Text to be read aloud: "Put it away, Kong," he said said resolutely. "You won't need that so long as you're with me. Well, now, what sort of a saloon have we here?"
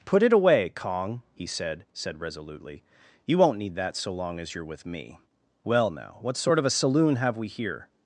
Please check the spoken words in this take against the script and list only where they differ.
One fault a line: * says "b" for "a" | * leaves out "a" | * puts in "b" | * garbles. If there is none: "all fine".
all fine